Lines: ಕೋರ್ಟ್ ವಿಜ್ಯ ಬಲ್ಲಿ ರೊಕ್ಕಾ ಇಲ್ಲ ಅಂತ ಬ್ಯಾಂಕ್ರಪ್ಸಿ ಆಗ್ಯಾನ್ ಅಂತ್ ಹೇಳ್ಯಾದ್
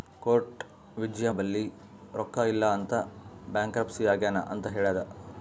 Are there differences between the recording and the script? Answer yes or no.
no